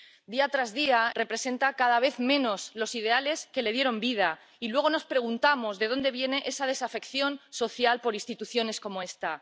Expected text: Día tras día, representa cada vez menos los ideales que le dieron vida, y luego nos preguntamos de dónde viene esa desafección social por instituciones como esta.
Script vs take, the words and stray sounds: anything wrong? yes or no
no